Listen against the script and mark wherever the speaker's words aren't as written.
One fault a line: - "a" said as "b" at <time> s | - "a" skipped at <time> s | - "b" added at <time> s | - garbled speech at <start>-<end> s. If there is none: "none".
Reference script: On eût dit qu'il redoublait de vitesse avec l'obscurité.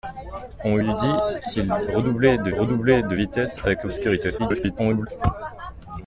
- "redoublait de" added at 2.6 s
- garbled speech at 4.4-5.1 s